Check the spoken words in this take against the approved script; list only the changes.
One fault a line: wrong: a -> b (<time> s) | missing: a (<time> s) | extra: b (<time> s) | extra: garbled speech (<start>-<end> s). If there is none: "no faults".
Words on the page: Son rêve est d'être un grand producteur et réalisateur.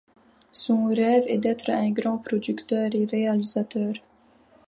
no faults